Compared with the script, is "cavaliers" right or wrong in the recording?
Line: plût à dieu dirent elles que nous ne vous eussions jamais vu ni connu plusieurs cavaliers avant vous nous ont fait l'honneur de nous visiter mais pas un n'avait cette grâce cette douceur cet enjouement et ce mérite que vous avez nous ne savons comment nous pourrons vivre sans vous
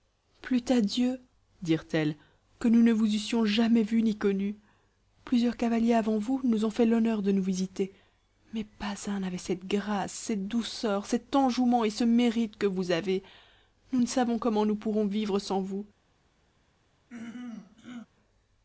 right